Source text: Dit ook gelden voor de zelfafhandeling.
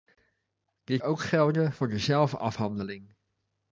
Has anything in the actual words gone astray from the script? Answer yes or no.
no